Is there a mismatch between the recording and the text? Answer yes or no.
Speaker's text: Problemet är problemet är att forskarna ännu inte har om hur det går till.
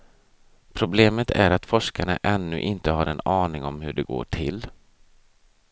yes